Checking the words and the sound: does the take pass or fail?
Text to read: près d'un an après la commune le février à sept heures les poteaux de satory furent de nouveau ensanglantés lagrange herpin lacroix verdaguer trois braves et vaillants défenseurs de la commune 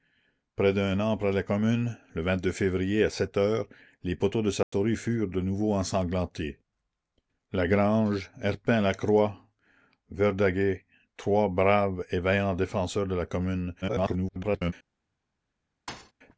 fail